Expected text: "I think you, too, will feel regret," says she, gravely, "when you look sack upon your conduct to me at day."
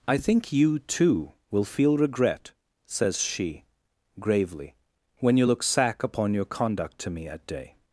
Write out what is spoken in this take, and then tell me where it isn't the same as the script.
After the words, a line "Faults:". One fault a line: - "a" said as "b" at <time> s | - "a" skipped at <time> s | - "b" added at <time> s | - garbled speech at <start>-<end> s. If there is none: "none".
"I think you, too, will feel regret," says she, gravely, "when you look sack upon your conduct to me at day."
Faults:
none